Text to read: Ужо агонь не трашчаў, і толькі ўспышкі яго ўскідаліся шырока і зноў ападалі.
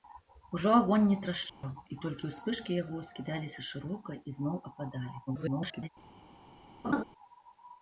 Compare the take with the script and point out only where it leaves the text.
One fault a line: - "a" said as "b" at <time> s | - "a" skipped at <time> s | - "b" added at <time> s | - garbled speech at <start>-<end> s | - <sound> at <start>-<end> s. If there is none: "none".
- dropout at 1.5-1.6 s
- garbled speech at 5.3-5.9 s
- laugh at 6.8-7.0 s